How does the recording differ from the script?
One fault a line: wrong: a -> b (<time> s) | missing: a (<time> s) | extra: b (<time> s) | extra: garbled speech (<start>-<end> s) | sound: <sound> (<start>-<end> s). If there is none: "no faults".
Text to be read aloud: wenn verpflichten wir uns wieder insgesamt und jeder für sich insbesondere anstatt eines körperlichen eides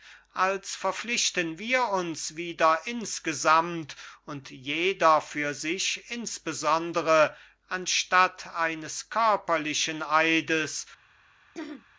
wrong: wenn -> als (0.3 s)
sound: throat clearing (11.5-11.9 s)